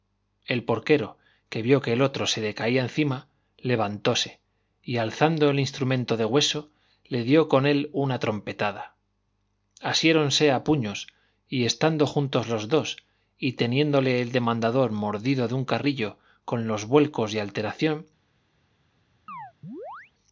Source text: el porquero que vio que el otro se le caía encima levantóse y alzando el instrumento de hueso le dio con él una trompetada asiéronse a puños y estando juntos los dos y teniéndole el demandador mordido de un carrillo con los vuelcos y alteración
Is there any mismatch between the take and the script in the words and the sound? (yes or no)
yes